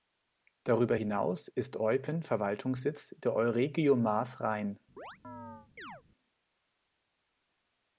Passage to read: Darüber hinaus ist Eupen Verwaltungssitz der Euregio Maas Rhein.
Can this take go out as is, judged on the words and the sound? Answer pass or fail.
fail